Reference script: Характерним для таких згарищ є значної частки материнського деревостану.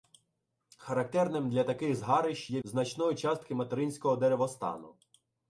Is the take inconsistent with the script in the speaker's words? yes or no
no